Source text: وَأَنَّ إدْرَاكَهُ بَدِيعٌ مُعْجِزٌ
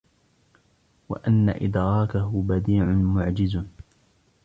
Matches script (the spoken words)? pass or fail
pass